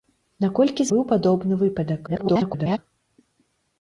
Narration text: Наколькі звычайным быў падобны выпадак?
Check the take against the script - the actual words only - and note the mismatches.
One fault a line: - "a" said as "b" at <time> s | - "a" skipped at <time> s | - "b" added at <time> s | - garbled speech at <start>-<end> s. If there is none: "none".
- "звычайным" skipped at 0.9 s
- garbled speech at 2.1-2.8 s